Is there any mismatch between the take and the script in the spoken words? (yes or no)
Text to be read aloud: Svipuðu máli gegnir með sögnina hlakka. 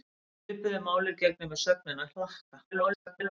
yes